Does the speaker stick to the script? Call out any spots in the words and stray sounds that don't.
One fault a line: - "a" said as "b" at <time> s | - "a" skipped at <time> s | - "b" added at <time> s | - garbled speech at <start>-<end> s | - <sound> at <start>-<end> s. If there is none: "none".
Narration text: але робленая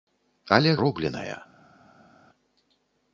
none